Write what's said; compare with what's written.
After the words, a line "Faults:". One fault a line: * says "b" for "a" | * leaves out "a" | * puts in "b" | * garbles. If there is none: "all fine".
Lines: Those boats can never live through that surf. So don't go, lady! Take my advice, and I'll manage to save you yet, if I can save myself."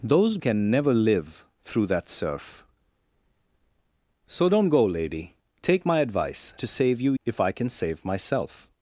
Those can never live through that surf. So don't go, lady! Take my advice, to save you if I can save myself."
Faults:
* leaves out "boats"
* leaves out "and I'll manage"
* leaves out "yet"